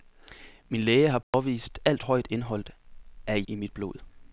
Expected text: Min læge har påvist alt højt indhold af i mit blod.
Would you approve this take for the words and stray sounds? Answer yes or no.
no